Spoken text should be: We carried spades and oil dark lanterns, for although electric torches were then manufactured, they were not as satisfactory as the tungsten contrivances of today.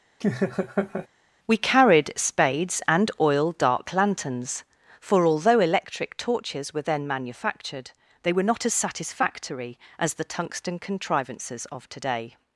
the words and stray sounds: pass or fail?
fail